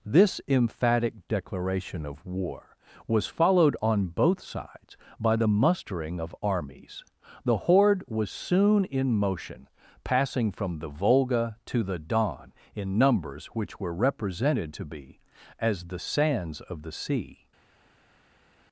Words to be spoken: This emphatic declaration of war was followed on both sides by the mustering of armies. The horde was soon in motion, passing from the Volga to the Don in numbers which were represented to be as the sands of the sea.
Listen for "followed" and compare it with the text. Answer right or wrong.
right